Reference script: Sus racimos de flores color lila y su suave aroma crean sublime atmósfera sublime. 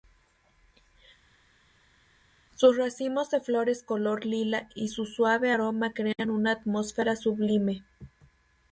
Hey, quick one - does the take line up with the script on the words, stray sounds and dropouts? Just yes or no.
no